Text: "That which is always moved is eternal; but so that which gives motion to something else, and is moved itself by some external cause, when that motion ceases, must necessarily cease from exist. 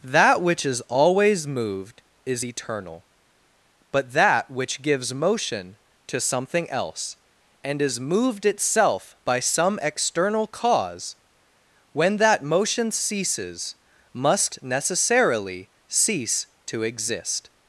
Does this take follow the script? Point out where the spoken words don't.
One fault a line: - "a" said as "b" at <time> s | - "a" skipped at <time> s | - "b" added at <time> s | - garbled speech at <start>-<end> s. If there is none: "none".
- "so" skipped at 4.1 s
- "from" said as "to" at 16.7 s